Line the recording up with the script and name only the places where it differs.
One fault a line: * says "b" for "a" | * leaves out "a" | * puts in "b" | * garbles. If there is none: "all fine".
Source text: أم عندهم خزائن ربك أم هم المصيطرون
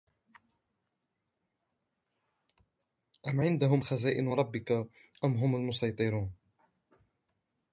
all fine